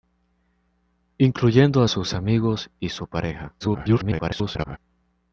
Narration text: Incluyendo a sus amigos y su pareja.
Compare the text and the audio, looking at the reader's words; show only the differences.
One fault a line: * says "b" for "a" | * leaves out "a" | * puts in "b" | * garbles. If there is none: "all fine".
* garbles